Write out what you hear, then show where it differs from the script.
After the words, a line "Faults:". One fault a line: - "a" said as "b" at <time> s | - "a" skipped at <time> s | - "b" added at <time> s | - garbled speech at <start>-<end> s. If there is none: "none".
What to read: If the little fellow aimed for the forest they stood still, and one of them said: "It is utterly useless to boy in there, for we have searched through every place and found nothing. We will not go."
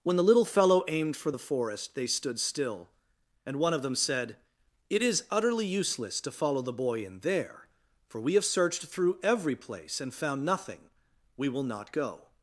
When the little fellow aimed for the forest they stood still, and one of them said: "It is utterly useless to follow the boy in there, for we have searched through every place and found nothing. We will not go."
Faults:
- "If" said as "When" at 0.0 s
- "follow the" added at 6.3 s